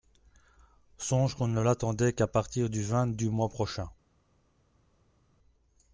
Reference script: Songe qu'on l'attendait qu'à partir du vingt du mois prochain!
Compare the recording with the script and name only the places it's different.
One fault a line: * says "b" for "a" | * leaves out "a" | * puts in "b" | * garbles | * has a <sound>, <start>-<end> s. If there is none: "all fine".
* puts in "ne"